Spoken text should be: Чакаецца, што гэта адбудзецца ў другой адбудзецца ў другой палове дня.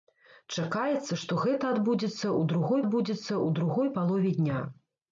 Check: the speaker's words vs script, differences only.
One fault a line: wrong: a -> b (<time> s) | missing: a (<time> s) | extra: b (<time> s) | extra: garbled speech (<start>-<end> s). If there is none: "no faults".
no faults